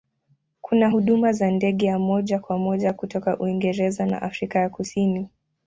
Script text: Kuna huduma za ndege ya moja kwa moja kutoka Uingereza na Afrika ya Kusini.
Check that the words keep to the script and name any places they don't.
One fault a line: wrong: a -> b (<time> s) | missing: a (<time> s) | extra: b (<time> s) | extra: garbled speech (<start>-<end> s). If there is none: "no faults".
no faults